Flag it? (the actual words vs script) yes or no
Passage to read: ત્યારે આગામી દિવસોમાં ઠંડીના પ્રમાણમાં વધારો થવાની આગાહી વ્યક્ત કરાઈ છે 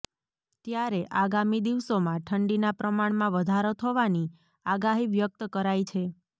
no